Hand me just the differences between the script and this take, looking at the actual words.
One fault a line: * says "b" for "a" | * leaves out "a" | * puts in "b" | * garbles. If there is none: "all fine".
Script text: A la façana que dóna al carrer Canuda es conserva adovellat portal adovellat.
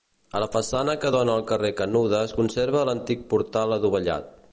* says "l'antic" for "adovellat"